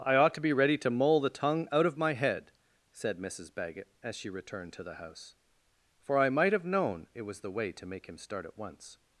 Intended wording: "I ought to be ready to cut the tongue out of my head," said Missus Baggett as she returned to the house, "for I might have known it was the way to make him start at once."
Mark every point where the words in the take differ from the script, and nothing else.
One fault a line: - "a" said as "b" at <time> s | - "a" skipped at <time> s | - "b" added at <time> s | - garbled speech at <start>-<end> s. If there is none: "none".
- "cut" said as "mull" at 0.9 s